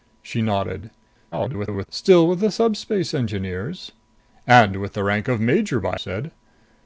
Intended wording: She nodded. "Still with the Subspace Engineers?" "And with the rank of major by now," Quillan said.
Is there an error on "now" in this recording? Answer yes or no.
yes